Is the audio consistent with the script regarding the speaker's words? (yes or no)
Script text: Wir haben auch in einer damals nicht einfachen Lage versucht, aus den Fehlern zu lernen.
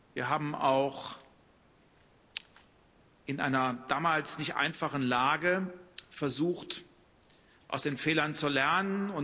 yes